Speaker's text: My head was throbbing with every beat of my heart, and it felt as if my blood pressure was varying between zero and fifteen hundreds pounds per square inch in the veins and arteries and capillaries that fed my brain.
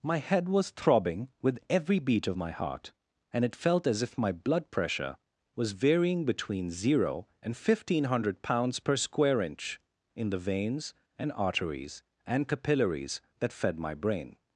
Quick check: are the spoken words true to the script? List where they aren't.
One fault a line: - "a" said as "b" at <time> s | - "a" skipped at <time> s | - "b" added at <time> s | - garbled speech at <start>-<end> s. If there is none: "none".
- "hundreds" said as "hundred" at 8.1 s